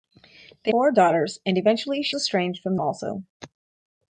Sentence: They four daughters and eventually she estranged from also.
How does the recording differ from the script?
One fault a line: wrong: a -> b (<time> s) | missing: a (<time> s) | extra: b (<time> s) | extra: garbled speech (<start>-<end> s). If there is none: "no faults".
no faults